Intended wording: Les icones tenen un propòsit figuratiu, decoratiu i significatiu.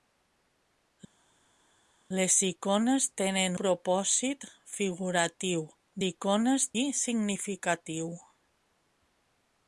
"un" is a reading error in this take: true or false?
true